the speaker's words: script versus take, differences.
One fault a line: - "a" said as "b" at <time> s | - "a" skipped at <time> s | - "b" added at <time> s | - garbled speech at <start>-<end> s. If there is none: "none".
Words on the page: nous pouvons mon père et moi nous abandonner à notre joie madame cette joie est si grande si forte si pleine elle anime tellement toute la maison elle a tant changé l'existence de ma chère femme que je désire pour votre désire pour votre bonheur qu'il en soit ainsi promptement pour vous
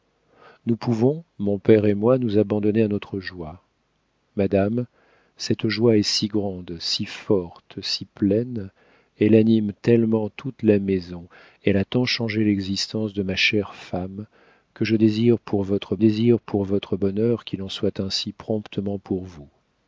none